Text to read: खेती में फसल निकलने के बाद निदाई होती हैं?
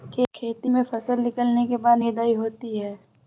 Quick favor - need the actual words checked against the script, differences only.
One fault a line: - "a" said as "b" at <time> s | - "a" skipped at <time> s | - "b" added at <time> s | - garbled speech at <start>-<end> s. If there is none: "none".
none